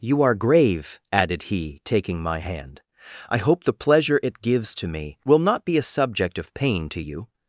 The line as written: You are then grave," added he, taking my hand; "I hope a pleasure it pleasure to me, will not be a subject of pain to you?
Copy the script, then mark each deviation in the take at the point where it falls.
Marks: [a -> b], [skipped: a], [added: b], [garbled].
You are [skipped: then] grave," added he, taking my hand; "I hope [a -> the] pleasure it [pleasure -> gives] to me, will not be a subject of pain to you?